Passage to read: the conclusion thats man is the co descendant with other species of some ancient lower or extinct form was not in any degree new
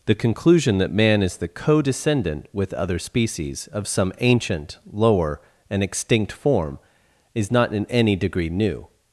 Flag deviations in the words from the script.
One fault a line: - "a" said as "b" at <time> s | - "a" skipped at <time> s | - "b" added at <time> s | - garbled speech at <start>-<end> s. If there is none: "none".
- "thats" said as "that" at 0.8 s
- "or" said as "and" at 5.7 s
- "was" said as "is" at 7.3 s